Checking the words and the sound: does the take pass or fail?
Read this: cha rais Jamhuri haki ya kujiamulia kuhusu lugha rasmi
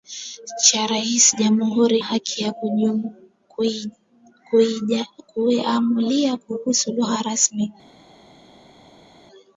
pass